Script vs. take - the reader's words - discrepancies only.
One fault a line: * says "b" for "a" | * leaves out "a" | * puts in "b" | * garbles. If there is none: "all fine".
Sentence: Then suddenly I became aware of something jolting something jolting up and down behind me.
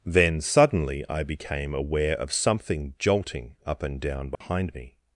* leaves out "something jolting"